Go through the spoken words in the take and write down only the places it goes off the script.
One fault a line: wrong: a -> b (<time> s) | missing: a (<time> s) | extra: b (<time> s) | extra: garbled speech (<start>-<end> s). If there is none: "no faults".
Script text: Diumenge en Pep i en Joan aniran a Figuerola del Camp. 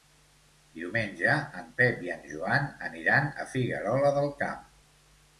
no faults